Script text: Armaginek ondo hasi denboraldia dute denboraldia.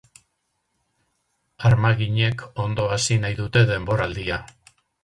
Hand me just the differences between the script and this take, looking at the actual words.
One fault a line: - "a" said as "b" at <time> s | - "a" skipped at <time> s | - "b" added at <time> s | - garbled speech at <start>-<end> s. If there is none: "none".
- "denboraldia" said as "nahi" at 3.3 s